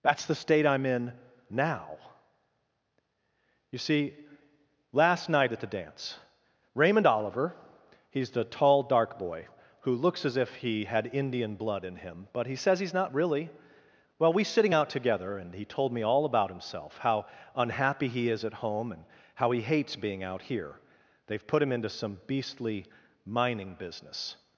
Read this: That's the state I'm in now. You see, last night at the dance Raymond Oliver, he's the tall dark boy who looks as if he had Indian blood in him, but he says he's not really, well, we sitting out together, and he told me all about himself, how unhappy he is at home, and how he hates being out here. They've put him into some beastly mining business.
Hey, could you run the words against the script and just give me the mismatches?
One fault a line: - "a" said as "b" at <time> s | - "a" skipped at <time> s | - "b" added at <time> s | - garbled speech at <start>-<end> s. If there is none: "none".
none